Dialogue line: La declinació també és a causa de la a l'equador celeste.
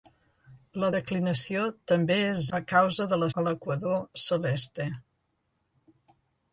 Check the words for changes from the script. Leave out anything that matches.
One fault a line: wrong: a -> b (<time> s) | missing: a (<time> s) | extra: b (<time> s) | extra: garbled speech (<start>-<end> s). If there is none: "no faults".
no faults